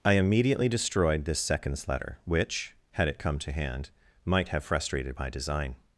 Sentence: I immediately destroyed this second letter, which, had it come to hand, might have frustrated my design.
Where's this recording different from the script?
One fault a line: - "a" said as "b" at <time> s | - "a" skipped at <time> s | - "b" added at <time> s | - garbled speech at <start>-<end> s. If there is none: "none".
- "second" said as "seconds" at 1.4 s